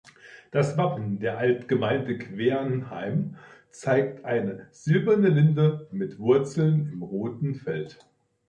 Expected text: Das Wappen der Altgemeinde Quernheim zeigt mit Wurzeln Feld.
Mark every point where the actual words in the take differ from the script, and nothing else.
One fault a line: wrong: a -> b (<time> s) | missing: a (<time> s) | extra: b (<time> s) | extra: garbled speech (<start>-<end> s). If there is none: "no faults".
extra: eine silberne Linde (4.2 s)
extra: im roten (6.9 s)